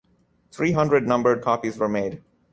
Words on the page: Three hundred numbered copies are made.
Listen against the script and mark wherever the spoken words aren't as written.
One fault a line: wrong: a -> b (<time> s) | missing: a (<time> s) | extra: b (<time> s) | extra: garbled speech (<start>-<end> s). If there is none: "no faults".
wrong: are -> were (1.8 s)